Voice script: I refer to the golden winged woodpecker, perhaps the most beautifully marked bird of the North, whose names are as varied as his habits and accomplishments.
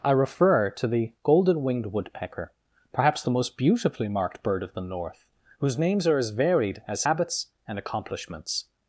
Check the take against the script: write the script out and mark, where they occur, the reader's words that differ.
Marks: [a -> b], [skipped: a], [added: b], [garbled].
I refer to the golden winged woodpecker, perhaps the most beautifully marked bird of the North, whose names are as varied as [skipped: his] habits and accomplishments.